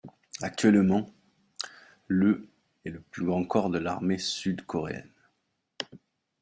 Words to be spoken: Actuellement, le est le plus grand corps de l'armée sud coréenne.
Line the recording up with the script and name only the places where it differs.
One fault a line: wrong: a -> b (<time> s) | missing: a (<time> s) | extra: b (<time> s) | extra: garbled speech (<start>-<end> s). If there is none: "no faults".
no faults